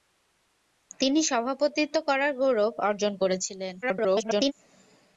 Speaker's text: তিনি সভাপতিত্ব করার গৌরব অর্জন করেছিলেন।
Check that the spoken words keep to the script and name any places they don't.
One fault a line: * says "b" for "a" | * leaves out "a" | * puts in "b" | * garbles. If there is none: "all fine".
* garbles